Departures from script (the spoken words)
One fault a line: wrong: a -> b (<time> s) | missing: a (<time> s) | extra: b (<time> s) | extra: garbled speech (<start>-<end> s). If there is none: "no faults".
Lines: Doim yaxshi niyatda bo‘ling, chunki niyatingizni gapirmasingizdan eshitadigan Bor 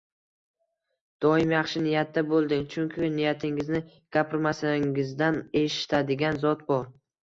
extra: Zot (6.5 s)